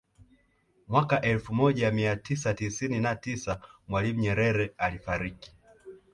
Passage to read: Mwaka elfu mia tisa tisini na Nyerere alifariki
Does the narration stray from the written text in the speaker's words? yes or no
yes